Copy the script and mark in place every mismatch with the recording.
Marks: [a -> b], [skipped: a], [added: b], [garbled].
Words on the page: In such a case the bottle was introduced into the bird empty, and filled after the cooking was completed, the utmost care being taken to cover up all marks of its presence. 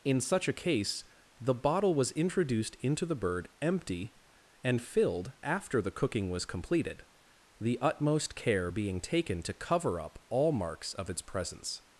In such a case the bottle was introduced into the bird empty, and filled after the cooking was completed, the utmost care being taken to cover up all marks of its presence.